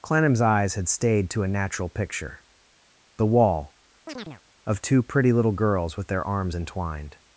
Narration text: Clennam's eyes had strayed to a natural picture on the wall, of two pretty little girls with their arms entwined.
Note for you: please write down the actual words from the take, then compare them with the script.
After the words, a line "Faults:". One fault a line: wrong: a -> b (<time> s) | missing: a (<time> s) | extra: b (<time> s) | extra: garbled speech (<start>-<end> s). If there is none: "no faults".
Clennam's eyes had stayed to a natural picture the wall, of two pretty little girls with their arms entwined.
Faults:
wrong: strayed -> stayed (0.9 s)
missing: on (2.4 s)